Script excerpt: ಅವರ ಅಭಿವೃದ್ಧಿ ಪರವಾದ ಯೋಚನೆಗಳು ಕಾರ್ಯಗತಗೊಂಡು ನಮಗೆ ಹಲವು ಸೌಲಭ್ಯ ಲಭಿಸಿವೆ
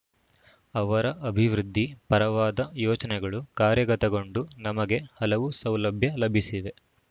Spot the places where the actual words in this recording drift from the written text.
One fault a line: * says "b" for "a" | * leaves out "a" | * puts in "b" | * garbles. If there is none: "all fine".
all fine